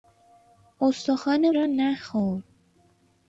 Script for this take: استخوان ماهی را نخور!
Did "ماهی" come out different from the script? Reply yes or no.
yes